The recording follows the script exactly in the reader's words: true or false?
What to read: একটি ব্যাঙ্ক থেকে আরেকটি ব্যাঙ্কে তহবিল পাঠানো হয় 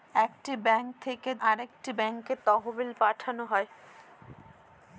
true